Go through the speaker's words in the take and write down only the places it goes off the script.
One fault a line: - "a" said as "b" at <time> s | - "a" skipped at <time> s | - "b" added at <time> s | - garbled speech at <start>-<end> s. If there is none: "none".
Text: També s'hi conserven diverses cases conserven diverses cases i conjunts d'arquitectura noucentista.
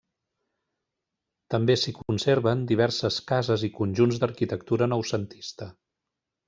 - "conserven diverses cases" skipped at 3.7 s